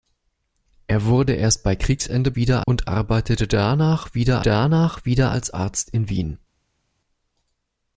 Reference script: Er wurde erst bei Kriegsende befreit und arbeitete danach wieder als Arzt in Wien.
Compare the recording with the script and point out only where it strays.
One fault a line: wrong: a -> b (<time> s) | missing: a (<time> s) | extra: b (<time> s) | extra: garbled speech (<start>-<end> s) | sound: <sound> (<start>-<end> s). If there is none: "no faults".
wrong: befreit -> wieder (2.3 s)
extra: danach wieder (4.4 s)